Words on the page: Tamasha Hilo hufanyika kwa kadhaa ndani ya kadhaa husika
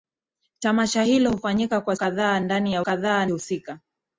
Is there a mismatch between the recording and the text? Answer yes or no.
no